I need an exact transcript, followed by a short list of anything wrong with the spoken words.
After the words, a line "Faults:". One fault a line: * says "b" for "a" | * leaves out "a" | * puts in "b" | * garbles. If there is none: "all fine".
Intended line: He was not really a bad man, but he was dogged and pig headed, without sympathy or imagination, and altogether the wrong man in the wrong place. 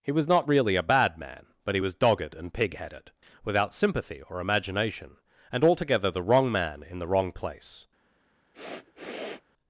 He was not really a bad man, but he was dogged and pig headed, without sympathy or imagination, and altogether the wrong man in the wrong place.
Faults:
all fine